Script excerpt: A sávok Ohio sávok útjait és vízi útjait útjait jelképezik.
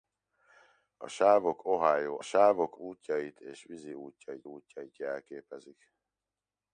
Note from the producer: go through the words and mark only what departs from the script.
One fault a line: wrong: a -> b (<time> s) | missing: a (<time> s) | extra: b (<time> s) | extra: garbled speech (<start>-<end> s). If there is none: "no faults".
no faults